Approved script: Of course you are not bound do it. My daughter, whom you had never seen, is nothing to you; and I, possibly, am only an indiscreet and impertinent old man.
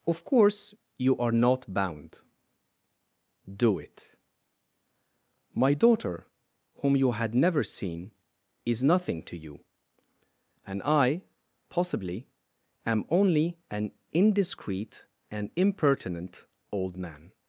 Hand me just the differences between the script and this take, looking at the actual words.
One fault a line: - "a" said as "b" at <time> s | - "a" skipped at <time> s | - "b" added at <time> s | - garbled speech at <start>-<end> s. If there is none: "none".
none